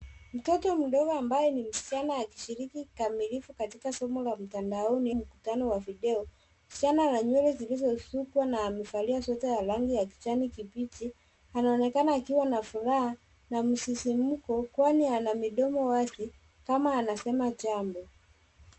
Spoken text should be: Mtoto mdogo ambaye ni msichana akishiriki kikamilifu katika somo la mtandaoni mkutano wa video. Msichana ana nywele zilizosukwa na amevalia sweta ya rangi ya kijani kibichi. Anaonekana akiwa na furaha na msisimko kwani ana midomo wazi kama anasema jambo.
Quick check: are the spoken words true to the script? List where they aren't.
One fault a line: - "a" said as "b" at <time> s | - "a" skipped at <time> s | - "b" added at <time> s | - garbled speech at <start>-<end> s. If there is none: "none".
none